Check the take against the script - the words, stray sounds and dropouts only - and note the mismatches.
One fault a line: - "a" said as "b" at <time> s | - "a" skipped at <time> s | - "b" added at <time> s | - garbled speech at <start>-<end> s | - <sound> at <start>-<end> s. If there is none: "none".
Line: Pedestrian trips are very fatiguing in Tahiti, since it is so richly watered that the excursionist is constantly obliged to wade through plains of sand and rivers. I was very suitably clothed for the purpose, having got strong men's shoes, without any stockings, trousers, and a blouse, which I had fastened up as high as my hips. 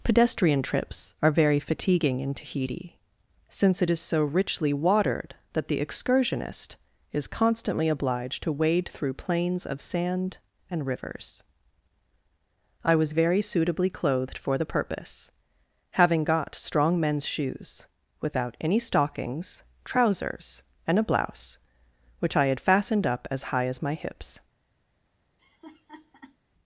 - laugh at 25.4-26.4 s